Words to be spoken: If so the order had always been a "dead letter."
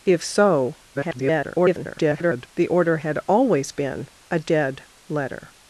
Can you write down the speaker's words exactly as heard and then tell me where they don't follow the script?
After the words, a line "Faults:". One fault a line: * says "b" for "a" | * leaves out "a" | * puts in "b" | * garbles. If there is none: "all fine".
If so [garbled] the order had always been a "dead letter."
Faults:
* garbles